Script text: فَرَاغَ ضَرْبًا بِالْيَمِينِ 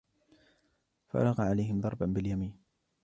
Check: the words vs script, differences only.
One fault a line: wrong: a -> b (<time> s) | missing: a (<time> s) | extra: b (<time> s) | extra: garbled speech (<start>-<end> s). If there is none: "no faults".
extra: عَلَيْهِمْ (1.4 s)